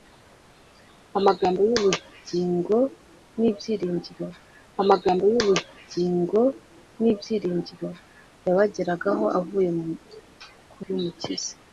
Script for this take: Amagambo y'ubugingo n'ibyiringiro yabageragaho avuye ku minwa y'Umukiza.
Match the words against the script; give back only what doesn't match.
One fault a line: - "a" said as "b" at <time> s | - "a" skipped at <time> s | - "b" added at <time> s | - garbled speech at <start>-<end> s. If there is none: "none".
- "amagambo y'ubugingo n'ibyiringiro" added at 4.8 s
- "minwa" skipped at 10.8 s